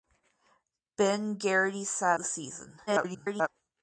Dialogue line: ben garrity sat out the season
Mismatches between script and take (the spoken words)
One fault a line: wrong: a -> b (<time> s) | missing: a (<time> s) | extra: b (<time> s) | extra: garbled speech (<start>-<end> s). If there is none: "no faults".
missing: out (2.2 s)
extra: garbled speech (2.9-3.5 s)